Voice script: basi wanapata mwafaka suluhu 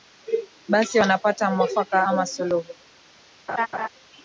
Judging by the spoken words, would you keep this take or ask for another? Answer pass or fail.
fail